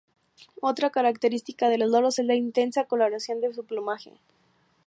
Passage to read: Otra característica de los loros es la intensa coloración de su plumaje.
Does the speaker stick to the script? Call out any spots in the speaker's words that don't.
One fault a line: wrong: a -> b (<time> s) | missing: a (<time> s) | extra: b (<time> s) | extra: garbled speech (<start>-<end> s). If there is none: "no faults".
no faults